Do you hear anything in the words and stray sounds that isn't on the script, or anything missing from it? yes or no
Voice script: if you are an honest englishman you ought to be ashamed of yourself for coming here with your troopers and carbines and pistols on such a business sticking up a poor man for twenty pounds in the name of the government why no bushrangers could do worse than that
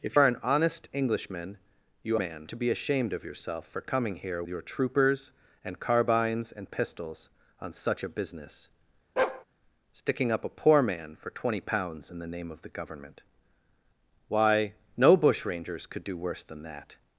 yes